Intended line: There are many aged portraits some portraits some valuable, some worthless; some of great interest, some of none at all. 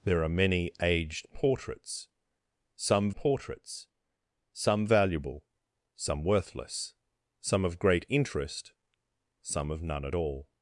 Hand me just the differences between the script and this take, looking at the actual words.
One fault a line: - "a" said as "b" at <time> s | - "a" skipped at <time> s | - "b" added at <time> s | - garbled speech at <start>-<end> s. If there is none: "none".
none